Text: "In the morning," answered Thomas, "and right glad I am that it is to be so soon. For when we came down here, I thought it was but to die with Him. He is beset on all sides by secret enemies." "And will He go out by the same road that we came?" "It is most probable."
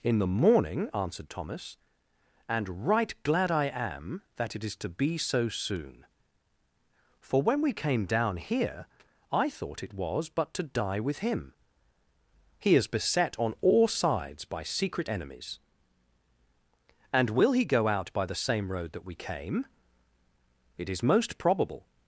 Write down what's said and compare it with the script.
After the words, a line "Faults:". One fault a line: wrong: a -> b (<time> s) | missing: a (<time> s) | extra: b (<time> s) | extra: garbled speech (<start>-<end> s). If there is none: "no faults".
"In the morning," answered Thomas, "and right glad I am that it is to be so soon. For when we came down here, I thought it was but to die with Him. He is beset on all sides by secret enemies." "And will He go out by the same road that we came?" "It is most probable."
Faults:
no faults